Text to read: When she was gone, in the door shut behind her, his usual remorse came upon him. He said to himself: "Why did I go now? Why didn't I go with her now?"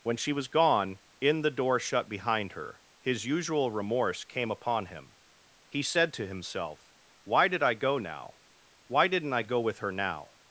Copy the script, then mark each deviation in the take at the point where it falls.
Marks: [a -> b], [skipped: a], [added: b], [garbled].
When she was gone, in the door shut behind her, his usual remorse came upon him. He said to himself: "Why did I go now? Why didn't I go with her now?"